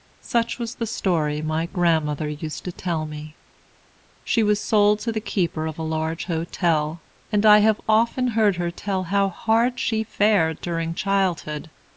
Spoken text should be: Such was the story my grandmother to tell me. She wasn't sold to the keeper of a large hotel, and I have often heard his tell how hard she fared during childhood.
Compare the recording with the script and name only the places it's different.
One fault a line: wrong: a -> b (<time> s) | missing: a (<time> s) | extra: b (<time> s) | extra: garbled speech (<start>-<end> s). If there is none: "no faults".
extra: used (2.3 s)
wrong: wasn't -> was (4.4 s)
wrong: his -> her (8.6 s)